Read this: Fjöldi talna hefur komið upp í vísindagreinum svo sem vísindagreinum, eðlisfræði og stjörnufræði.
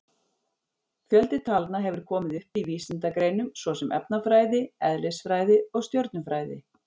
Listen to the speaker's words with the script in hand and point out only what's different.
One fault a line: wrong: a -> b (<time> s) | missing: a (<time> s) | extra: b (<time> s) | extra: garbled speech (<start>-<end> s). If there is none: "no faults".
wrong: vísindagreinum -> efnafræði (4.0 s)